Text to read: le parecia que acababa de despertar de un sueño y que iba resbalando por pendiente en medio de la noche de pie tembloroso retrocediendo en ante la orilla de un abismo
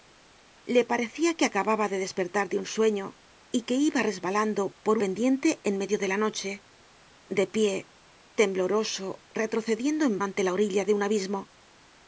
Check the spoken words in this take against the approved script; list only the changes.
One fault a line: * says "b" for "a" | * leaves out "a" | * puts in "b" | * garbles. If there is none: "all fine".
all fine